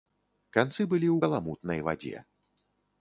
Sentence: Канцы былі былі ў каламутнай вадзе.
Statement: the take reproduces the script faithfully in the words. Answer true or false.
false